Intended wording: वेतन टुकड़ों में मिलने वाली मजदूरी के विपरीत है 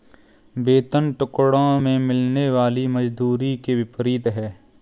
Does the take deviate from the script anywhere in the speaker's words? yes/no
no